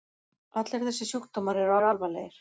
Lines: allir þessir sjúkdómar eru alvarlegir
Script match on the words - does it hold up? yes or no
no